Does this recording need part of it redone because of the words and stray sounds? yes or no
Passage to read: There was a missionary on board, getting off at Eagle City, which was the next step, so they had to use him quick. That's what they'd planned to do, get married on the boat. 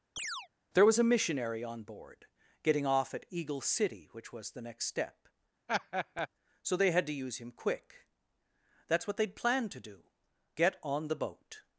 yes